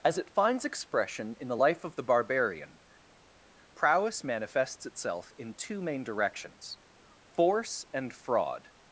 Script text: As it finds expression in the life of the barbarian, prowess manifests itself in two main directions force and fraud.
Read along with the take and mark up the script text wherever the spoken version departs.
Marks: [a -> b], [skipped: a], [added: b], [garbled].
As it finds expression in the life of the barbarian, prowess manifests itself in two main directions force and fraud.